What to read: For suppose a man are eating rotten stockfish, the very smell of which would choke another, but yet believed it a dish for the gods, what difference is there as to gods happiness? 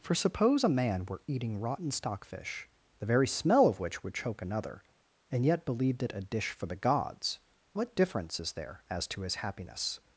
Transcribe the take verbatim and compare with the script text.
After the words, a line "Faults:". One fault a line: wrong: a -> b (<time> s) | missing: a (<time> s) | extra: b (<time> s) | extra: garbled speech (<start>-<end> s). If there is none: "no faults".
For suppose a man were eating rotten stockfish, the very smell of which would choke another, and yet believed it a dish for the gods, what difference is there as to his happiness?
Faults:
wrong: are -> were (1.0 s)
wrong: but -> and (5.3 s)
wrong: gods -> his (9.2 s)